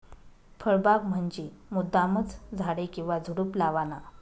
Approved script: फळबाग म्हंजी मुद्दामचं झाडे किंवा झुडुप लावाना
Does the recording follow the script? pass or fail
pass